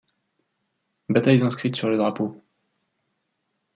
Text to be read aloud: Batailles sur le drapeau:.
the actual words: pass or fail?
fail